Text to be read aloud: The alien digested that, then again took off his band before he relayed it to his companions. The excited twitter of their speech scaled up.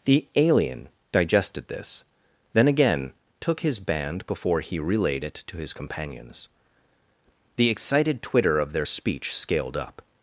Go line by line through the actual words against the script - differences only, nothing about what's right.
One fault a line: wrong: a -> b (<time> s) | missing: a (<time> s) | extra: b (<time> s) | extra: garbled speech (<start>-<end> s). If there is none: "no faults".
wrong: that -> this (1.7 s)
missing: off (3.6 s)